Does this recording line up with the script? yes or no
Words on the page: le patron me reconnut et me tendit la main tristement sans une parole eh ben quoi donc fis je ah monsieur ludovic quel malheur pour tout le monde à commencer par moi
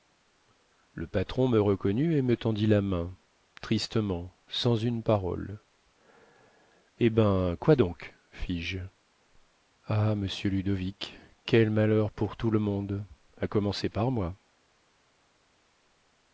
yes